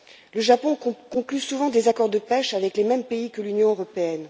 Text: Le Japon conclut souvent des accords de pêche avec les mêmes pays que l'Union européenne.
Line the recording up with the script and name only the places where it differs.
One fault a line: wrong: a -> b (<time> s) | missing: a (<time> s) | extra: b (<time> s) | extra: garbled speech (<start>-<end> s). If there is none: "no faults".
no faults